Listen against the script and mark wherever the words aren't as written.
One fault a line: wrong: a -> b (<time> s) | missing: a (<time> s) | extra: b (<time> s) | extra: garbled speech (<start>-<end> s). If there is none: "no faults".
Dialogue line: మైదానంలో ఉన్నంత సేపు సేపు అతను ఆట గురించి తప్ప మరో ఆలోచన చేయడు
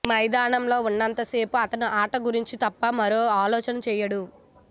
missing: సేపు (1.6 s)